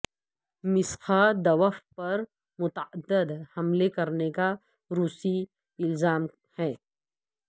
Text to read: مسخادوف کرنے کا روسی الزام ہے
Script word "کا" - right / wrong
right